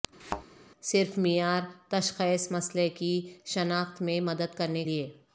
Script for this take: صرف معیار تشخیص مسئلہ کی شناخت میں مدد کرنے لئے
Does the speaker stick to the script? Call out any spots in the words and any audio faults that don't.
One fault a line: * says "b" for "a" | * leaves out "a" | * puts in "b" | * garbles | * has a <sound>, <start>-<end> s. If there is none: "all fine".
* has a thud, 0.2-0.5 s